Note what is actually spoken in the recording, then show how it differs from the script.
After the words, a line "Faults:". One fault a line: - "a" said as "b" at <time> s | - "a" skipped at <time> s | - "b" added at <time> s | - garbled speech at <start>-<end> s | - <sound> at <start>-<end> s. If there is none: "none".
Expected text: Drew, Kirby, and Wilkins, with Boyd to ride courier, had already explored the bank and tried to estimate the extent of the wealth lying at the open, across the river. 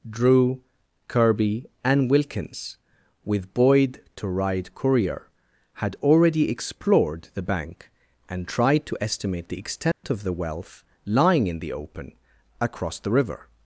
Drew, Kirby, and Wilkins, with Boyd to ride courier, had already explored the bank and tried to estimate the extent of the wealth lying in the open, across the river.
Faults:
- dropout at 9.9-10.0 s
- "at" said as "in" at 11.5 s